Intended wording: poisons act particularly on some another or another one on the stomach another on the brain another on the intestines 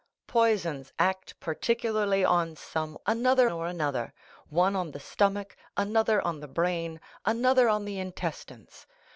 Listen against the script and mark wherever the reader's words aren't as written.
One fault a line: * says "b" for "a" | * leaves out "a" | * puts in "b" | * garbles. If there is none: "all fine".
all fine